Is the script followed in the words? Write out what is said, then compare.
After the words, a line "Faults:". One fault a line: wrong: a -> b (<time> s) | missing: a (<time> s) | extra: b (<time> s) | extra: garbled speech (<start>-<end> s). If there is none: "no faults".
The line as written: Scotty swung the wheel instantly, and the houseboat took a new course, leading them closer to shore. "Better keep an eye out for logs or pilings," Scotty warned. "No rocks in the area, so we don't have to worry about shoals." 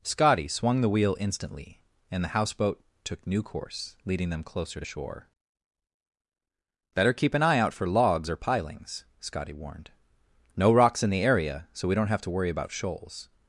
Scotty swung the wheel instantly, and the houseboat took new course, leading them closer to shore. "Better keep an eye out for logs or pilings," Scotty warned. "No rocks in the area, so we don't have to worry about shoals."
Faults:
missing: a (3.2 s)